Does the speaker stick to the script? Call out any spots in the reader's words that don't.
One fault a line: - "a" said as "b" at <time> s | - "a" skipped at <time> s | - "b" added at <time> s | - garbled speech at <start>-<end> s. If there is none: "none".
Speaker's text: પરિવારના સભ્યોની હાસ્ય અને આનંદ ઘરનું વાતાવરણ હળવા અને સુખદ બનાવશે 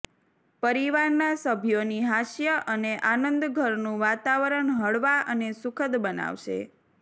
none